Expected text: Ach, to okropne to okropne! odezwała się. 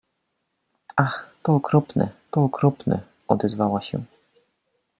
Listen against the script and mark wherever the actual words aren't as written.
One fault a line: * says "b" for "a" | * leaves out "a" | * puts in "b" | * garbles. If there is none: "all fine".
all fine